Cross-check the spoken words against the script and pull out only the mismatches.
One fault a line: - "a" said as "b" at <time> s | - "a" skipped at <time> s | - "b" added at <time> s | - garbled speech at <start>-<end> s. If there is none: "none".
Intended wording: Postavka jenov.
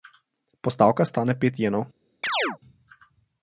- "stane pet" added at 1.1 s